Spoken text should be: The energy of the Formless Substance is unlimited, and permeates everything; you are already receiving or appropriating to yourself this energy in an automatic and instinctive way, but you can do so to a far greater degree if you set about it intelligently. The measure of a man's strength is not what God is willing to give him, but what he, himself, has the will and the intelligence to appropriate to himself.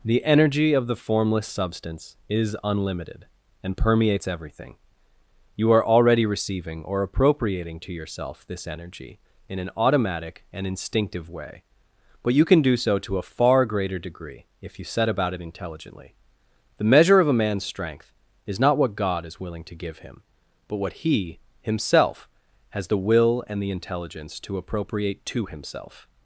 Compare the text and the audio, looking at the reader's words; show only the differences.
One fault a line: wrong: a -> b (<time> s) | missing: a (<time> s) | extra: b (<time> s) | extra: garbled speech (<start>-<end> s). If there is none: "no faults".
no faults